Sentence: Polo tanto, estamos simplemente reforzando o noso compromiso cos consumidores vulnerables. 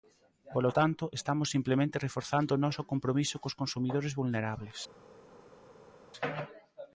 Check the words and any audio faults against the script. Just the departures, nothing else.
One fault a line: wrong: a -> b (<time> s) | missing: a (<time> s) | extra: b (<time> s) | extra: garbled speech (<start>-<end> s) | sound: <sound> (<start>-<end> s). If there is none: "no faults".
no faults